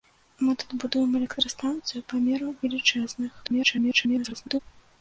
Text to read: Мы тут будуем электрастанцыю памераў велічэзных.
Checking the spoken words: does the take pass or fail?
fail